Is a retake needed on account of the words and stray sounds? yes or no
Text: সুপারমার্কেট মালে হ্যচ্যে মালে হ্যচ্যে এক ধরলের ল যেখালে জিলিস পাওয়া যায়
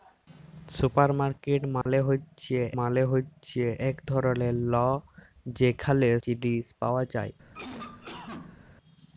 yes